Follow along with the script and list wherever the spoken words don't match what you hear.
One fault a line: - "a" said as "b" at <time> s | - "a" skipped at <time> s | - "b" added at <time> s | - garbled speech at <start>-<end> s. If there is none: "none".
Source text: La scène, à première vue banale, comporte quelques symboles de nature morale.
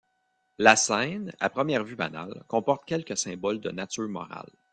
none